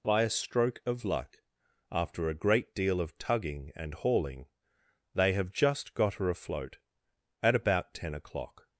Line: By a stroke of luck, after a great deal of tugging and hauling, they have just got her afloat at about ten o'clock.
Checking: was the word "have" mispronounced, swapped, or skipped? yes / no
no